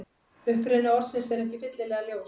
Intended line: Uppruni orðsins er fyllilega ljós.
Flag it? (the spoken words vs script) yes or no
yes